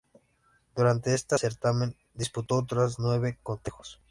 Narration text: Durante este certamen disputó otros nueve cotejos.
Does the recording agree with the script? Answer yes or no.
yes